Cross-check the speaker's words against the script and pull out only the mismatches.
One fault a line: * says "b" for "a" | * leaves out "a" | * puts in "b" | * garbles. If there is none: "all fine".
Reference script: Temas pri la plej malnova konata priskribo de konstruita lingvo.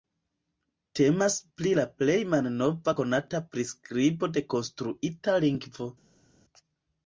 all fine